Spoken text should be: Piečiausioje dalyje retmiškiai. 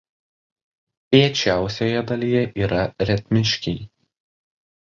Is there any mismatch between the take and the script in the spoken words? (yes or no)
yes